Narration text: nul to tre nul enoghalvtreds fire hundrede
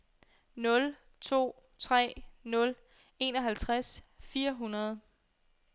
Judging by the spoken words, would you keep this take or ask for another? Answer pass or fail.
pass